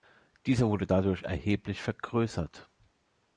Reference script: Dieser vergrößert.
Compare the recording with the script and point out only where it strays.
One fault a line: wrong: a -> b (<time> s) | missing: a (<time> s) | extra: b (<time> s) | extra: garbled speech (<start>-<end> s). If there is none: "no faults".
extra: wurde dadurch erheblich (0.7 s)